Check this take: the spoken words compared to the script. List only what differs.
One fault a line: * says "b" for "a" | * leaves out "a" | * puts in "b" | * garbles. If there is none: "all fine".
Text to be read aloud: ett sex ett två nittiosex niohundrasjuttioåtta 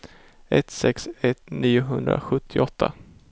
* leaves out "två nittiosex"